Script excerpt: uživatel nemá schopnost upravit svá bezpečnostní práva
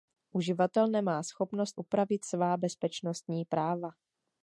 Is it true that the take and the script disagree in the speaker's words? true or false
false